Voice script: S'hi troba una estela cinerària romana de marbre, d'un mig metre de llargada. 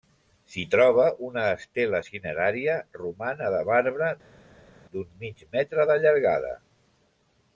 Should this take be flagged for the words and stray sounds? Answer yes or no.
no